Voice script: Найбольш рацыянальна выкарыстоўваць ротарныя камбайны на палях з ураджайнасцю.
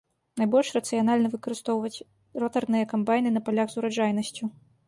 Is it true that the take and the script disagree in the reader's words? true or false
false